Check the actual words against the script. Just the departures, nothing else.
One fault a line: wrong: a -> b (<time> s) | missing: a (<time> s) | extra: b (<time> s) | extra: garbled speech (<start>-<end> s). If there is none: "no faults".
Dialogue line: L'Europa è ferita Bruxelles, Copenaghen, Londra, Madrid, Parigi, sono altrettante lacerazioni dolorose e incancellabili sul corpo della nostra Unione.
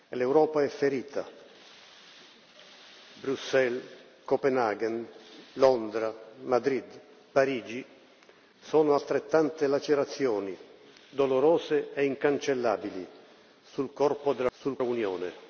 wrong: nostra -> sul (14.5 s)